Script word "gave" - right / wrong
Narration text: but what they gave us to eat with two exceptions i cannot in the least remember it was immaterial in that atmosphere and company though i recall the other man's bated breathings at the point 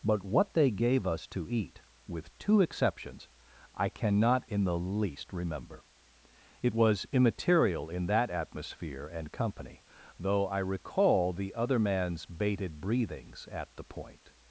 right